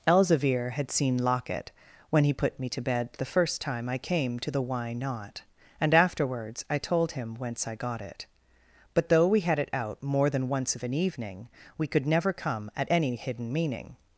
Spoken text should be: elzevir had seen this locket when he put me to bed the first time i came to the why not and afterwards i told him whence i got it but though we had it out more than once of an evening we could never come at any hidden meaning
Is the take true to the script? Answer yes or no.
no